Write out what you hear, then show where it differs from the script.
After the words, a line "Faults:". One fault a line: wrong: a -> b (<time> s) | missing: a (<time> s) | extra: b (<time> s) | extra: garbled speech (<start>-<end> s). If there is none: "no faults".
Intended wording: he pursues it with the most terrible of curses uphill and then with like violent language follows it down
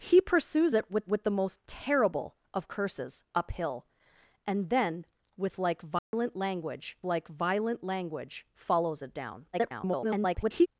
he pursues it with with the most terrible of curses uphill and then with like violent language like violent language follows it down [garbled]
Faults:
extra: with (1.1 s)
extra: like violent language (7.0 s)
extra: garbled speech (9.5-10.7 s)